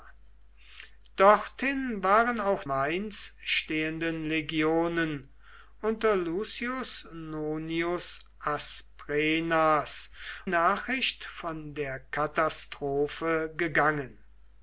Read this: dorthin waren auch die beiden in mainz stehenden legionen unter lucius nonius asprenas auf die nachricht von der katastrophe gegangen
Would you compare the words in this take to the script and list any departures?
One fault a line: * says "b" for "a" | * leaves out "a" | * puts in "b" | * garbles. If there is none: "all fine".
* leaves out "die beiden in"
* leaves out "auf die"